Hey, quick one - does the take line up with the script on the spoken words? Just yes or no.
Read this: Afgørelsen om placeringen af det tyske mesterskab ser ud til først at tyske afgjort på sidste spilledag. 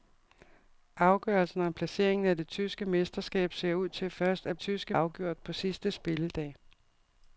yes